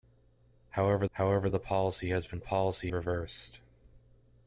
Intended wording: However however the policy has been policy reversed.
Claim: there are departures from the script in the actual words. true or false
false